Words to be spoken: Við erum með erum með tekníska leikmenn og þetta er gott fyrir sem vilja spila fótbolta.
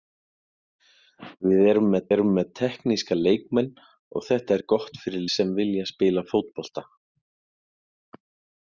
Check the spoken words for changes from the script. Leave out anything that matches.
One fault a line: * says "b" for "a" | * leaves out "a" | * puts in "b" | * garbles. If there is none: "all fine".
all fine